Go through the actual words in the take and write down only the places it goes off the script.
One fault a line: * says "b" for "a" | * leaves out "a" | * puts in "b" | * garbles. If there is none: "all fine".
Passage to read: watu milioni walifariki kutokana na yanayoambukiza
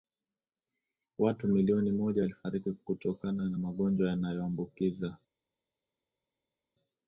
* puts in "moja"
* puts in "magonjwa"